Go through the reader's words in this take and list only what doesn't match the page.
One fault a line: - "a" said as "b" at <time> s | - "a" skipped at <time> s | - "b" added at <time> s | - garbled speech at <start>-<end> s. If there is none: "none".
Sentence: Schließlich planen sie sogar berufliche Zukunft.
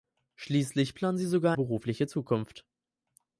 none